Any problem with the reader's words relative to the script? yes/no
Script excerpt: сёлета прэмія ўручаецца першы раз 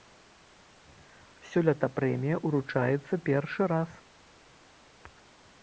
no